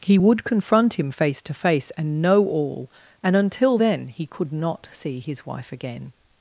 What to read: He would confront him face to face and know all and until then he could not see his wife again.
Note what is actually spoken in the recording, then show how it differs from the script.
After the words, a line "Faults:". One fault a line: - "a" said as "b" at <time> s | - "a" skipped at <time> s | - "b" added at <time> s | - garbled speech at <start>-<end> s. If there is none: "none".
He would confront him face to face and know all and until then he could not see his wife again.
Faults:
none